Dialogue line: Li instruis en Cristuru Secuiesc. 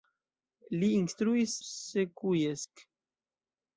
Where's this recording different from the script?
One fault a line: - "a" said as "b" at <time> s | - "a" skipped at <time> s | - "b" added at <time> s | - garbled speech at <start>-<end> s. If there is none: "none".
- "en Cristuru" skipped at 1.5 s